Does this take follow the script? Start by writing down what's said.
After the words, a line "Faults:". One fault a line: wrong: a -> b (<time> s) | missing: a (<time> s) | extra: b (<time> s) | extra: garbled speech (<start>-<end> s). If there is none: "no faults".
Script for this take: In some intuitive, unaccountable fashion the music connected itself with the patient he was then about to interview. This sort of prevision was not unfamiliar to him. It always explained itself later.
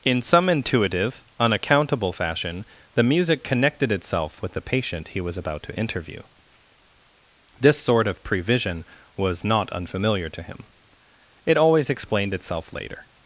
In some intuitive, unaccountable fashion the music connected itself with the patient he was about to interview. This sort of prevision was not unfamiliar to him. It always explained itself later.
Faults:
missing: then (5.4 s)